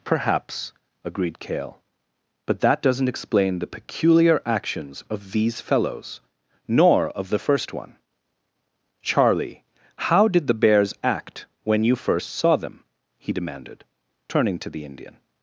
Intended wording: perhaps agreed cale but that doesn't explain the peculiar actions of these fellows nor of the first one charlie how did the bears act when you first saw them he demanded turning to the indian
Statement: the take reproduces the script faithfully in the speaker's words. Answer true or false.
true